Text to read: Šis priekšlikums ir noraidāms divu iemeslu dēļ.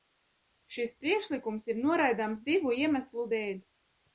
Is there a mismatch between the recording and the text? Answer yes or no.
no